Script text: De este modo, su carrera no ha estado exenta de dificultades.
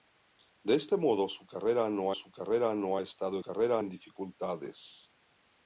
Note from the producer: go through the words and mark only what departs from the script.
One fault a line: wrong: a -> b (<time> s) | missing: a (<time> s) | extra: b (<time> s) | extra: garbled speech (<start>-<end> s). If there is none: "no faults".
extra: su carrera no (2.1 s)
wrong: exenta -> carrera (3.4 s)